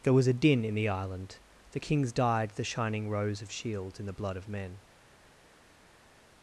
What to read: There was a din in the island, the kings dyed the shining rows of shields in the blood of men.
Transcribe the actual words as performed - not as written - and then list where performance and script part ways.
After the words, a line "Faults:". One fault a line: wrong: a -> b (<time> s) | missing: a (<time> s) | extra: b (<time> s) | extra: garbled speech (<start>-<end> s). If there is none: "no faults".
There was a din in the island, the kings dyed the shining rows of shields in the blood of men.
Faults:
no faults